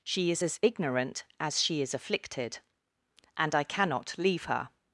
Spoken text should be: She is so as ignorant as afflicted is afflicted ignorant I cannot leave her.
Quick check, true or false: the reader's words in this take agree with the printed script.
false